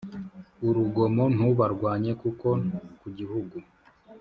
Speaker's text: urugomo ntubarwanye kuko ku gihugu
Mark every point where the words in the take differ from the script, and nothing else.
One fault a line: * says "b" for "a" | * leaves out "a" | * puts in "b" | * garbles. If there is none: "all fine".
all fine